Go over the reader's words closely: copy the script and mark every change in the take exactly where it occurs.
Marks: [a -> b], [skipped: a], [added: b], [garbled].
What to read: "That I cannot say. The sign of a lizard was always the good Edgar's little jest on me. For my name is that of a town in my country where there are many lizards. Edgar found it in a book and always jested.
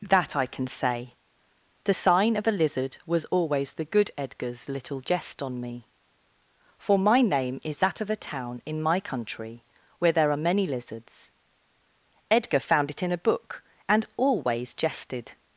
"That I [cannot -> can] say. The sign of a lizard was always the good Edgar's little jest on me. For my name is that of a town in my country where there are many lizards. Edgar found it in a book and always jested.